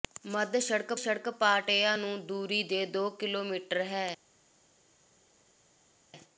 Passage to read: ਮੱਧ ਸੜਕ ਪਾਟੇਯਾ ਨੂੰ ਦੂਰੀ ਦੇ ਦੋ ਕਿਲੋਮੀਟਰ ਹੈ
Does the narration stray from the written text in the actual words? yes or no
yes